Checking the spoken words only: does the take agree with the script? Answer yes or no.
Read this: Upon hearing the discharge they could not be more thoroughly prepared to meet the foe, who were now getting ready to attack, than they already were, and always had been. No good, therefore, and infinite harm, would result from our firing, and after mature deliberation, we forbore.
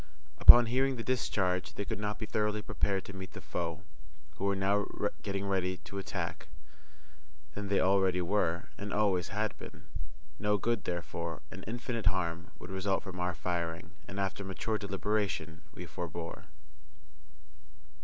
no